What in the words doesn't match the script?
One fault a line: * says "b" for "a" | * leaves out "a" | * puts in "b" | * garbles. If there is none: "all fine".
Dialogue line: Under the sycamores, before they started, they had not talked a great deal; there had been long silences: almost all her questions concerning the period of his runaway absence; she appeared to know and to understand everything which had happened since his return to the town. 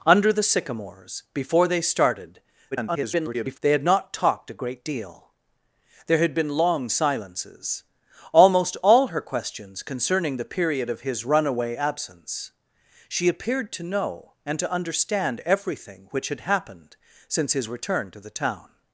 * garbles